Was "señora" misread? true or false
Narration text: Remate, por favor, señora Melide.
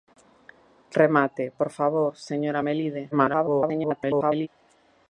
false